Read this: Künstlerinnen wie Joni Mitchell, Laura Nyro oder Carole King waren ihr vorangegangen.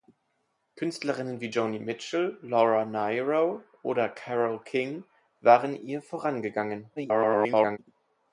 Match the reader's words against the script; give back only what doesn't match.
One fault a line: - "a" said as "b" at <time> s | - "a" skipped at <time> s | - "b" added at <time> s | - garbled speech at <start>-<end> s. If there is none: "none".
- garbled speech at 7.0-7.8 s